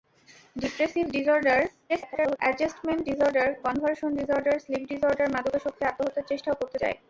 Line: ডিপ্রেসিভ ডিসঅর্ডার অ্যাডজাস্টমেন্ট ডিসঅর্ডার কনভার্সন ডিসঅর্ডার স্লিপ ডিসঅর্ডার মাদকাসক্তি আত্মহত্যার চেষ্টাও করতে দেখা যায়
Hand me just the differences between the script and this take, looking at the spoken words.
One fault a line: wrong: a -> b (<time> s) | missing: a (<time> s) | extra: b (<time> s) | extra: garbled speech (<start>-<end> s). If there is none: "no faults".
extra: garbled speech (1.9-2.4 s)
missing: দেখা (6.8 s)